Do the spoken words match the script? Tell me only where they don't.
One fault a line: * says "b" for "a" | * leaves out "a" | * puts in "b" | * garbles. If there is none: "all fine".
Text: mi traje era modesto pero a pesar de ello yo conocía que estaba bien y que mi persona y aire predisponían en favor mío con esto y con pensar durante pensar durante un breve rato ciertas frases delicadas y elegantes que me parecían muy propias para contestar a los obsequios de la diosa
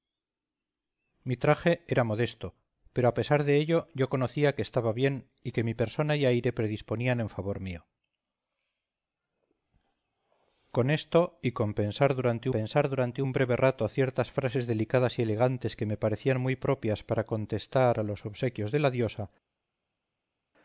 all fine